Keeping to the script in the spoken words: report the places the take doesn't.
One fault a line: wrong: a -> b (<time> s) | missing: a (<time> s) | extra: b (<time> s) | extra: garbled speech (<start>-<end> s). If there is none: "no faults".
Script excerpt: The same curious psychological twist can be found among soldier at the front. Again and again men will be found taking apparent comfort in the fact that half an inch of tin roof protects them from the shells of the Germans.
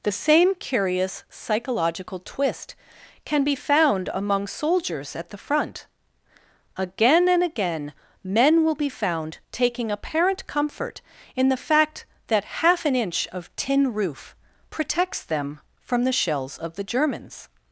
wrong: soldier -> soldiers (4.5 s)